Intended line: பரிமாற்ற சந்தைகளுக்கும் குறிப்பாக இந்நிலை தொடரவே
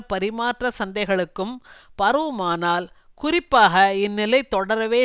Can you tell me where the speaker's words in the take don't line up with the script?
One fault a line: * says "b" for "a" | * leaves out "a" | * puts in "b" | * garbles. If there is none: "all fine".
* puts in "பரவுமானால்"